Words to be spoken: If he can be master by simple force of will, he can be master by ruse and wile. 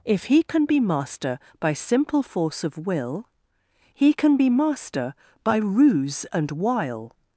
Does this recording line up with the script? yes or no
yes